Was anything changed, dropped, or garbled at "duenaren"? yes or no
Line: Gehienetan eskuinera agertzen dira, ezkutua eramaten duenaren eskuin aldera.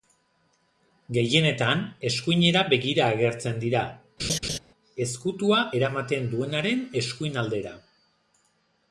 no